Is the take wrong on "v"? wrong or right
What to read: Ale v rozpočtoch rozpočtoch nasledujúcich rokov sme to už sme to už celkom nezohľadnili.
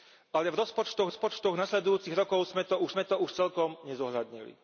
right